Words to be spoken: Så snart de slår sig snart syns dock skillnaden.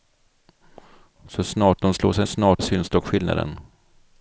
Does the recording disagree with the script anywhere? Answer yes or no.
no